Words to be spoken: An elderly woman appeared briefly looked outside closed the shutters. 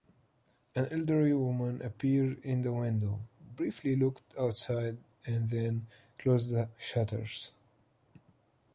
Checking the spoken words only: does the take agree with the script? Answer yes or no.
no